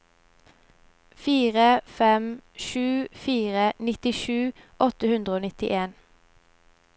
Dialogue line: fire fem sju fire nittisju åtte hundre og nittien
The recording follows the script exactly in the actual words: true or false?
true